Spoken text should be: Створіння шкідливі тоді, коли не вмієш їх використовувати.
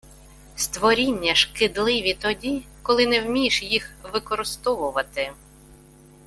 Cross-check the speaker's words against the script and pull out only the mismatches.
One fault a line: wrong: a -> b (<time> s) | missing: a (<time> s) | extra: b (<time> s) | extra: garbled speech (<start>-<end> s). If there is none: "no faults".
no faults